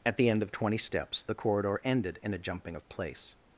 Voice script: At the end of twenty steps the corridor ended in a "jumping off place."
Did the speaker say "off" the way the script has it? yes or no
no